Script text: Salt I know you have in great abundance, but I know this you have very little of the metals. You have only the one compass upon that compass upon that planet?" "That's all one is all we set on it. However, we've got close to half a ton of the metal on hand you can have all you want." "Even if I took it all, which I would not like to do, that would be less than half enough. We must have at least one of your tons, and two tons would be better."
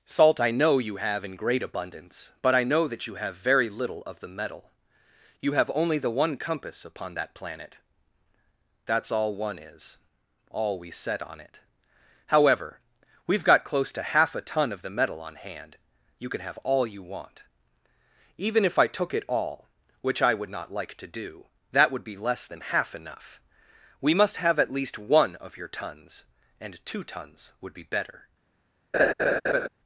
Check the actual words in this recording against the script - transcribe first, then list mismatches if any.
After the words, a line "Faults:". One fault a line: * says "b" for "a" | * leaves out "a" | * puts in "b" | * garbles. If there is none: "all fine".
Salt I know you have in great abundance, but I know that you have very little of the metal. You have only the one compass upon that planet?" "That's all one is all we set on it. However, we've got close to half a ton of the metal on hand you can have all you want." "Even if I took it all, which I would not like to do, that would be less than half enough. We must have at least one of your tons, and two tons would be better."
Faults:
* says "that" for "this"
* says "metal" for "metals"
* leaves out "compass upon that"